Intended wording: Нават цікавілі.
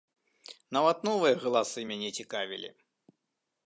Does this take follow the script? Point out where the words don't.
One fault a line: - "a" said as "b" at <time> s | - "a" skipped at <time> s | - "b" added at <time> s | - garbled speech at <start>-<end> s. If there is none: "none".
- "новыя галасы мяне" added at 1.1 s